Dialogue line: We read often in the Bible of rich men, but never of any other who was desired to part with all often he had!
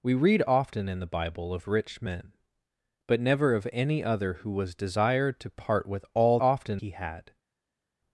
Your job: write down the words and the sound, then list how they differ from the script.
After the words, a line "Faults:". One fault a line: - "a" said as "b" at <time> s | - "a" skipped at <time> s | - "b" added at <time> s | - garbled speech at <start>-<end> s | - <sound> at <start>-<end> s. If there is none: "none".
We read often in the Bible of rich men, but never of any other who was desired to part with all often he had!
Faults:
none